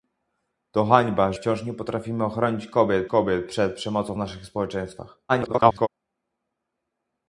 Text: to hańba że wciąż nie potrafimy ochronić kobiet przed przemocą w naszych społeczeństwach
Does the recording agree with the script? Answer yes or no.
no